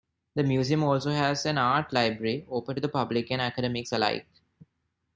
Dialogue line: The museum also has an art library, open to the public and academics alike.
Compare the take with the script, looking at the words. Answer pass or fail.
pass